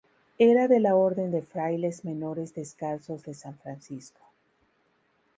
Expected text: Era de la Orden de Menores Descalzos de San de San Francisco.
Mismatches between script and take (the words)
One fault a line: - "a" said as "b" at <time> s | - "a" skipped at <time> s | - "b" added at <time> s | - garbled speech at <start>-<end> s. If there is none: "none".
- "Frailes" added at 1.4 s
- "de San" skipped at 3.6 s